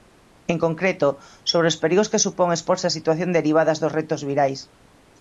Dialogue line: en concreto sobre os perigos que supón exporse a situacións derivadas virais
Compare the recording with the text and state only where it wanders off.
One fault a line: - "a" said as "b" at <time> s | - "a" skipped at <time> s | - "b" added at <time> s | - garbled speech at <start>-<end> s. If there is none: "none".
- "dos retos" added at 3.8 s